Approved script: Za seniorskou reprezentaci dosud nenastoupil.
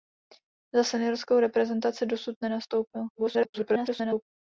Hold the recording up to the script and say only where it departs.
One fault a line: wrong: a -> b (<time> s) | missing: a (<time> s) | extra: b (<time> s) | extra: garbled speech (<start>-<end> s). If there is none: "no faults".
extra: garbled speech (3.1-4.3 s)